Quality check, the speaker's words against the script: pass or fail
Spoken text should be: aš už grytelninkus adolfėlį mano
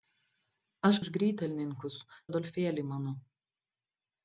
pass